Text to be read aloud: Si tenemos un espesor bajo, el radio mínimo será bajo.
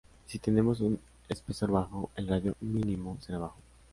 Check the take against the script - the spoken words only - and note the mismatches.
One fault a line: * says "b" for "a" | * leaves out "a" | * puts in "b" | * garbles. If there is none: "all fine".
all fine